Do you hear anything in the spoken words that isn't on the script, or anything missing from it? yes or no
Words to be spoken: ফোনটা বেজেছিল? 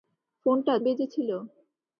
no